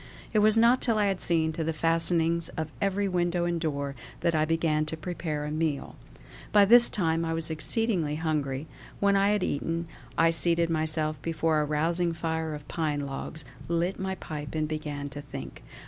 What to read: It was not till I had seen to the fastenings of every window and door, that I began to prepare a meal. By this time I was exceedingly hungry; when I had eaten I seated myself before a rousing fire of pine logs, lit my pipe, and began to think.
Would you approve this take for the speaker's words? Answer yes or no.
yes